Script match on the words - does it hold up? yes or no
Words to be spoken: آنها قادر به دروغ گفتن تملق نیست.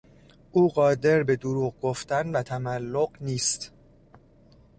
no